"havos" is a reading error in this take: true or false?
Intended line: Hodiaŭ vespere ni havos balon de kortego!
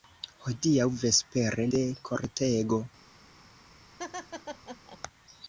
true